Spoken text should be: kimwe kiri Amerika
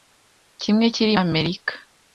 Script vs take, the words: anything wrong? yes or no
no